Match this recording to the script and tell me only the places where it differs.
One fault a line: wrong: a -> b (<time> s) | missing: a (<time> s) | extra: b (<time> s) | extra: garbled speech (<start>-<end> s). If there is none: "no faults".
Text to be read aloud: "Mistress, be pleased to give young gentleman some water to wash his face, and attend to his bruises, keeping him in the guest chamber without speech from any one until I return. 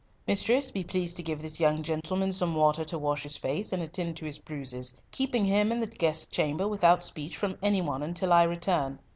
extra: this (1.4 s)